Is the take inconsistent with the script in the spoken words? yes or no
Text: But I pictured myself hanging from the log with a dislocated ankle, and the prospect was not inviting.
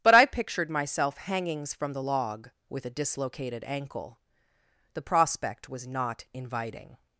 yes